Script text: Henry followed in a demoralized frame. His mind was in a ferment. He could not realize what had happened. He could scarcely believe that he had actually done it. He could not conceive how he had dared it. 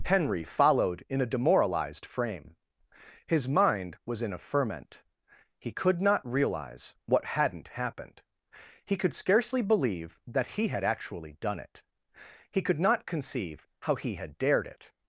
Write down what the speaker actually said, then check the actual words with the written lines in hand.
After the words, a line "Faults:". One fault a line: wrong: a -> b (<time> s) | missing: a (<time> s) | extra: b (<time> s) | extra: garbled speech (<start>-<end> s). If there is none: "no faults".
Henry followed in a demoralized frame. His mind was in a ferment. He could not realize what hadn't happened. He could scarcely believe that he had actually done it. He could not conceive how he had dared it.
Faults:
wrong: had -> hadn't (7.2 s)